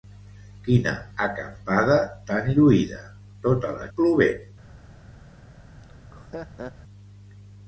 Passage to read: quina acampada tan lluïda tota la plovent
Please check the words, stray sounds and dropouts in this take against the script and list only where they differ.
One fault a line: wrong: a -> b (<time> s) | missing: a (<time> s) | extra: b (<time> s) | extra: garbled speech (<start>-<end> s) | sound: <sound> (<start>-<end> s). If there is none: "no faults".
sound: laugh (5.8-6.7 s)